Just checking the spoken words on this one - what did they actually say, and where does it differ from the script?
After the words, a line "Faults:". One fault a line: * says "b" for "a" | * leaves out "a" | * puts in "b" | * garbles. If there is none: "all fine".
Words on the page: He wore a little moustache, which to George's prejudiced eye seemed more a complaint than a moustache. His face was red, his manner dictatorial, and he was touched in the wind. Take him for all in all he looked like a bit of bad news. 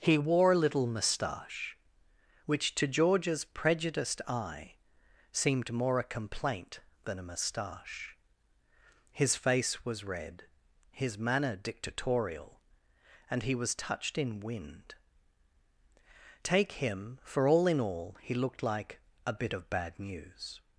He wore a little moustache, which to George's prejudiced eye seemed more a complaint than a moustache. His face was red, his manner dictatorial, and he was touched in wind. Take him for all in all he looked like a bit of bad news.
Faults:
* leaves out "the"